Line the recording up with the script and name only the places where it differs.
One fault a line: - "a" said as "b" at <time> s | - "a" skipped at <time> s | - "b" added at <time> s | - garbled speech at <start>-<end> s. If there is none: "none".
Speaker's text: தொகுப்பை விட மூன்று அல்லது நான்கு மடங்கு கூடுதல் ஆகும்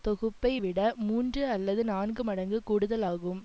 none